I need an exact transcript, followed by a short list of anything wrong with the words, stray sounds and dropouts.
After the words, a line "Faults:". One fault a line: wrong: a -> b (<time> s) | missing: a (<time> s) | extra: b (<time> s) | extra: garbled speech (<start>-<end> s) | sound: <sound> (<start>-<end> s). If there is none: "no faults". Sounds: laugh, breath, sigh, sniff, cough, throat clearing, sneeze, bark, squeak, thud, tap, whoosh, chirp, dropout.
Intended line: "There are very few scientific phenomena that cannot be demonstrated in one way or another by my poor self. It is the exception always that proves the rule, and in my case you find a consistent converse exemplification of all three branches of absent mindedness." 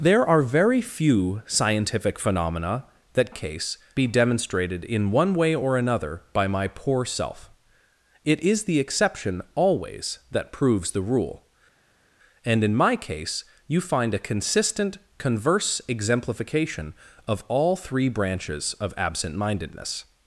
"There are very few scientific phenomena that case be demonstrated in one way or another by my poor self. It is the exception always that proves the rule, and in my case you find a consistent converse exemplification of all three branches of absent mindedness."
Faults:
wrong: cannot -> case (3.3 s)